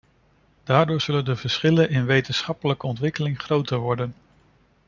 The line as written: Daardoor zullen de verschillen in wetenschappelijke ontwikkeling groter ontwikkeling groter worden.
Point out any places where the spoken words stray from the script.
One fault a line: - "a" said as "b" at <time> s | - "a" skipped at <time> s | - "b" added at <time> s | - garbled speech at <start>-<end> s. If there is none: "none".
- "ontwikkeling groter" skipped at 3.8 s